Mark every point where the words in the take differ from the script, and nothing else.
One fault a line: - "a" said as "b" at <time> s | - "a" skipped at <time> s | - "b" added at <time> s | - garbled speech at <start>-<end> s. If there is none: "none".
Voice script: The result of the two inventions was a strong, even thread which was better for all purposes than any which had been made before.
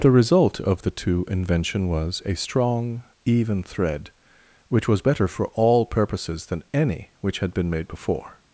- "inventions" said as "invention" at 1.3 s